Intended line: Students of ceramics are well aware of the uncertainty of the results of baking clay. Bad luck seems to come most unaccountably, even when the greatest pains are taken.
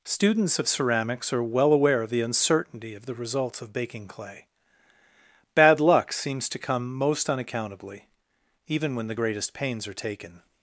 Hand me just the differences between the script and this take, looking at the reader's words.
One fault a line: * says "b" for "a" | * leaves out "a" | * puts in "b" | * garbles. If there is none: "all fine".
all fine